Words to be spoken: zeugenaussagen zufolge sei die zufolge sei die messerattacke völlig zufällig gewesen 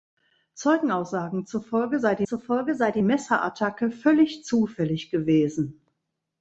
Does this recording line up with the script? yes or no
yes